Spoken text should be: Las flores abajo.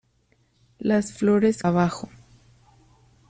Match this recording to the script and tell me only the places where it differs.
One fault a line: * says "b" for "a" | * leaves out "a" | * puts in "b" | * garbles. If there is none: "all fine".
all fine